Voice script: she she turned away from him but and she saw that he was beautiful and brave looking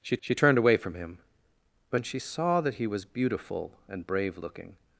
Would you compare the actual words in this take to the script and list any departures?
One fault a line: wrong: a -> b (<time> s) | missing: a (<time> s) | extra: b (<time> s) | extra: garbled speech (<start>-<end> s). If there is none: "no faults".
no faults